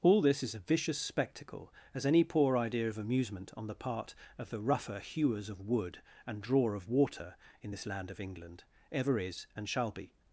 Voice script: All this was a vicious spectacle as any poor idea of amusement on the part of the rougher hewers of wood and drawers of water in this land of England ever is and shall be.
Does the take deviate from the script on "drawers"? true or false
true